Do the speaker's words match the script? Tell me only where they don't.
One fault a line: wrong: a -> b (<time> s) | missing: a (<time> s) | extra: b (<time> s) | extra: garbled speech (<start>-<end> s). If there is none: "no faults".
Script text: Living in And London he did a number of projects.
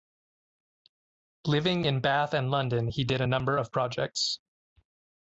extra: Bath (2.0 s)